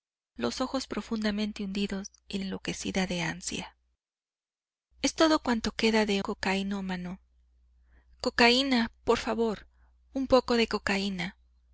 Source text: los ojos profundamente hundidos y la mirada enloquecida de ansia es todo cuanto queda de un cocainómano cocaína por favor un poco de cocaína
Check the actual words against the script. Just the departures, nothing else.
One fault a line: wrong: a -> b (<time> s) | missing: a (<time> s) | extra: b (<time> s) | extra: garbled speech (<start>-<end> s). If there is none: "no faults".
missing: la mirada (2.4 s)
missing: un (6.2 s)